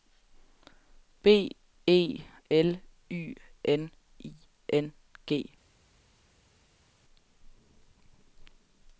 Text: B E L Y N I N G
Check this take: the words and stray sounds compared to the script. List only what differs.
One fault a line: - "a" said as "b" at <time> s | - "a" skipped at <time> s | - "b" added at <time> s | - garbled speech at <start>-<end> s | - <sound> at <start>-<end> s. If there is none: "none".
none